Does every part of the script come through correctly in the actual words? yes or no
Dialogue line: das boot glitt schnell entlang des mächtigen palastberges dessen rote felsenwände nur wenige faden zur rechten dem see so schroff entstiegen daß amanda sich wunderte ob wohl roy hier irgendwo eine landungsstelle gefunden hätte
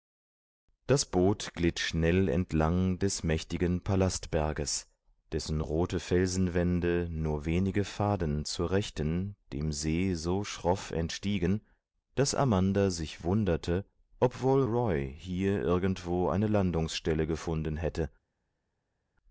yes